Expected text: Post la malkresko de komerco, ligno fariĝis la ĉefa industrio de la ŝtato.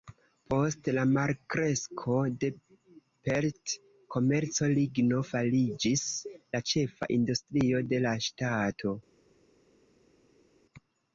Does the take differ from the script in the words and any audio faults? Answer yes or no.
yes